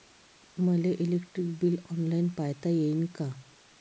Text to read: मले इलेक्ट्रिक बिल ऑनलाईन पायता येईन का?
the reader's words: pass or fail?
pass